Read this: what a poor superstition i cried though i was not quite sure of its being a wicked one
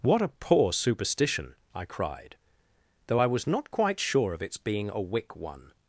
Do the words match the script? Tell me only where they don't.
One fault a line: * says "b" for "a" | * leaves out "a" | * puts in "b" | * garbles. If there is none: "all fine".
* says "wick" for "wicked"